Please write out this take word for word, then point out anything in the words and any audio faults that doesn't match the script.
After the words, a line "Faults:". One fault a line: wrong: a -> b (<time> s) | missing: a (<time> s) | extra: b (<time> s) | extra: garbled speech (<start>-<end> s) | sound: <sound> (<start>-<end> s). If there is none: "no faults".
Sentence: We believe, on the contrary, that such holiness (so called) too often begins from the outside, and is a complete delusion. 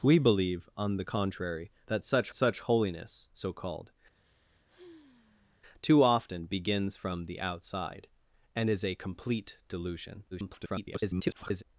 We believe, on the contrary, that such such holiness (so called) too often begins from the outside, and is a complete delusion. [garbled]
Faults:
extra: such (2.3 s)
sound: sigh (4.1-5.6 s)
extra: garbled speech (10.3-11.6 s)